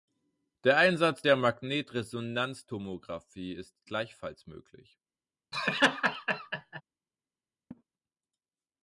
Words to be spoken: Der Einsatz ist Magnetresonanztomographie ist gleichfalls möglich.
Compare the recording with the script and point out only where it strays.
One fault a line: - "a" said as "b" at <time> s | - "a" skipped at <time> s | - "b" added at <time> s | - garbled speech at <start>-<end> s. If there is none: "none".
- "ist" said as "der" at 1.2 s